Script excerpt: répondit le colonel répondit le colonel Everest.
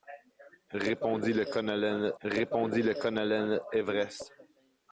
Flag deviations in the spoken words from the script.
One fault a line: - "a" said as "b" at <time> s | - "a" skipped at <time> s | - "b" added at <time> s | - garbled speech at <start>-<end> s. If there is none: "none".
none